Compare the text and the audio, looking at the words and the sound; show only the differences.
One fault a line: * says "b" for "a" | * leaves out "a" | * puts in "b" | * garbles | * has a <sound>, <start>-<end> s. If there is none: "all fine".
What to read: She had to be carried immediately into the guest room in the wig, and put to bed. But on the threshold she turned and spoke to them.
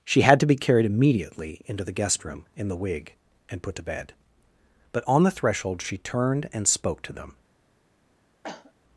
* has a cough, 8.4-8.7 s